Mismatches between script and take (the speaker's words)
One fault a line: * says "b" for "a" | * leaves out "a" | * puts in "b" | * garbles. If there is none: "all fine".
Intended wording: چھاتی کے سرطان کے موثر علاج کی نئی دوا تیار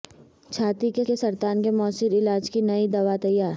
* puts in "کے"